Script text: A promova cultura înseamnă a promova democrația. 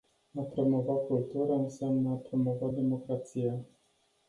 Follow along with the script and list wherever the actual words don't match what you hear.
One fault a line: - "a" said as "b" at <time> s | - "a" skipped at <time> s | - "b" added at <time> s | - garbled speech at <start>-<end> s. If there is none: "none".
none